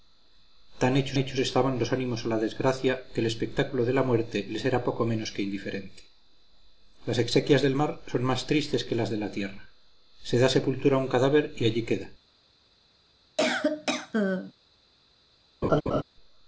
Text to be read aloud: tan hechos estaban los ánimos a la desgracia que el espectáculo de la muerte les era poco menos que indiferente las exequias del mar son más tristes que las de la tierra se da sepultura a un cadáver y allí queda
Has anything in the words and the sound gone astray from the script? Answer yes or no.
yes